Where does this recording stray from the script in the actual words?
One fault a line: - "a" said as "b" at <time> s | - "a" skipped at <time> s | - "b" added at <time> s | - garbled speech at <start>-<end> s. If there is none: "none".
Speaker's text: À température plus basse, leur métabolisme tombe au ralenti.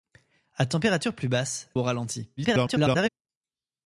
- "leur métabolisme tombe" skipped at 1.7 s
- garbled speech at 2.4-3.1 s